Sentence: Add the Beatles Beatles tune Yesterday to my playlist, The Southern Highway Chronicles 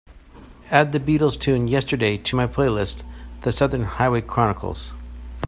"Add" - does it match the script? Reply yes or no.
yes